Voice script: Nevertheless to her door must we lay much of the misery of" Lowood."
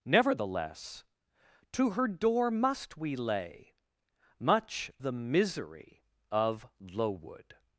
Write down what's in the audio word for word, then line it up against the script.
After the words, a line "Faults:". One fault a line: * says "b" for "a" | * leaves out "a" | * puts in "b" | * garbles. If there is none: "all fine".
Nevertheless to her door must we lay much the misery of" Lowood."
Faults:
* leaves out "of"